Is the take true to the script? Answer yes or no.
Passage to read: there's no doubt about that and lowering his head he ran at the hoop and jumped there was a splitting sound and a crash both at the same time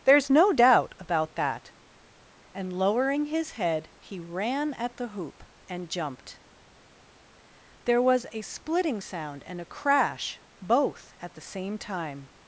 yes